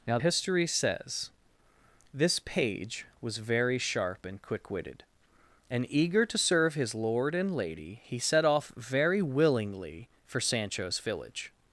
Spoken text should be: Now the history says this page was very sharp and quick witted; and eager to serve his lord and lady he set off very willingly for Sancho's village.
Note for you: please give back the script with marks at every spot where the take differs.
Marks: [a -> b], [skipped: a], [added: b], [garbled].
Now [skipped: the] history says this page was very sharp and quick witted; and eager to serve his lord and lady he set off very willingly for Sancho's village.